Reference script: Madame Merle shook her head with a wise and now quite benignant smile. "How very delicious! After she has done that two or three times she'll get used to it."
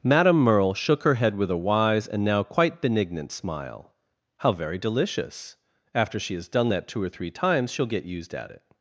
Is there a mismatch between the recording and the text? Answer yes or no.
yes